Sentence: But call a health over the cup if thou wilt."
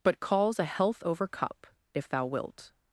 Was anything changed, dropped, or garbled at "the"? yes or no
yes